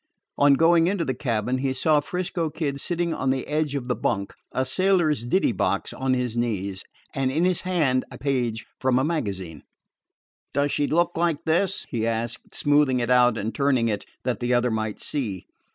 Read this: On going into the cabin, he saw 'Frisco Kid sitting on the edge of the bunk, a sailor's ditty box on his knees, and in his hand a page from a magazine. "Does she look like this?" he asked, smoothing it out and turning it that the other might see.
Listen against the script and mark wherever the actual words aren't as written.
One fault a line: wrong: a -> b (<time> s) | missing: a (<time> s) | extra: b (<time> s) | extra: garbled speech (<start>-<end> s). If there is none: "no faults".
no faults